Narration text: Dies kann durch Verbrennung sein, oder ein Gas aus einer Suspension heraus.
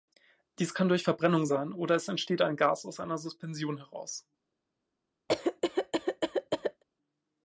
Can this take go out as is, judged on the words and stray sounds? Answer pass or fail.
fail